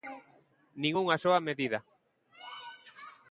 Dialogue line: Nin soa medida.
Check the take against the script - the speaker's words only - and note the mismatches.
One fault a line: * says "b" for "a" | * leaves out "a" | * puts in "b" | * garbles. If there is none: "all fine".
* puts in "unha"